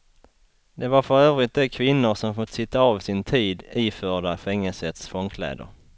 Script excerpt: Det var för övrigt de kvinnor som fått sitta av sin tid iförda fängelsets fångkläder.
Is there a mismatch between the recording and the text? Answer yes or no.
no